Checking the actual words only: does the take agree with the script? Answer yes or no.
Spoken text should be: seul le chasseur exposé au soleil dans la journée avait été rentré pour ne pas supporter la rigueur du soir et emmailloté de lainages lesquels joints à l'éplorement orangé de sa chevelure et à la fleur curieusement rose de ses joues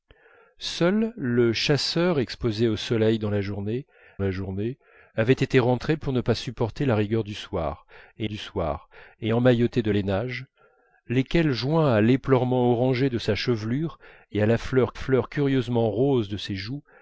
no